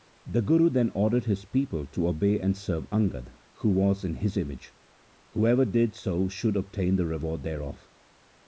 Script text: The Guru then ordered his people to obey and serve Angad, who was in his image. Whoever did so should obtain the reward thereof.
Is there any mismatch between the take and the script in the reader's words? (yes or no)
no